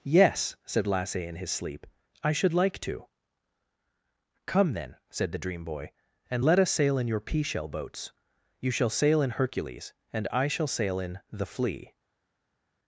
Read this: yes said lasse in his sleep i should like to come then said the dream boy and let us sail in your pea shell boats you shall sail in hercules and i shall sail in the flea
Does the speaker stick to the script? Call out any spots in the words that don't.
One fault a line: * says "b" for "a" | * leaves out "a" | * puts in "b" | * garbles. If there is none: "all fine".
all fine